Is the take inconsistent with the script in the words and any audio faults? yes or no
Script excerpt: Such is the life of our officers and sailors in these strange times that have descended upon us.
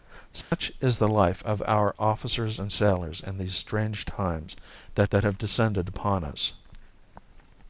yes